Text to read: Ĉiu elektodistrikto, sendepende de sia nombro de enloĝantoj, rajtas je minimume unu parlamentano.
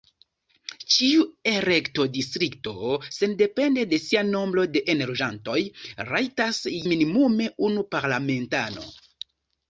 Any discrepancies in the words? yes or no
yes